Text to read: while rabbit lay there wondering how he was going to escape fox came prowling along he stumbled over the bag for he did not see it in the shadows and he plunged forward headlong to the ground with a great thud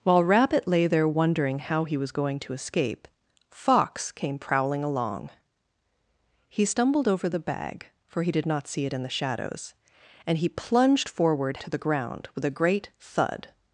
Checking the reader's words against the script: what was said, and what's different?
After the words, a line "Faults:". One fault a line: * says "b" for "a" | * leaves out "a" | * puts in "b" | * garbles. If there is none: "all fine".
while rabbit lay there wondering how he was going to escape fox came prowling along he stumbled over the bag for he did not see it in the shadows and he plunged forward to the ground with a great thud
Faults:
* leaves out "headlong"